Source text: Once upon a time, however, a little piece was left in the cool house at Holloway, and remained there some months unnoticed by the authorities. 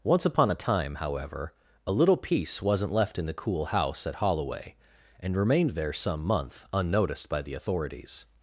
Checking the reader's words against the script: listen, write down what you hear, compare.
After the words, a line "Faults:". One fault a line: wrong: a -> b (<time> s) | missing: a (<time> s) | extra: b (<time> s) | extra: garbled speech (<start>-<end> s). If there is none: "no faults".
Once upon a time, however, a little piece wasn't left in the cool house at Holloway, and remained there some month unnoticed by the authorities.
Faults:
wrong: was -> wasn't (2.6 s)
wrong: months -> month (6.2 s)